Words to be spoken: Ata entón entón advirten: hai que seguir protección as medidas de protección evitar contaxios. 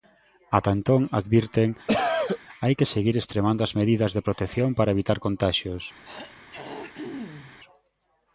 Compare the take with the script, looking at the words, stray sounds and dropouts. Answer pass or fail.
fail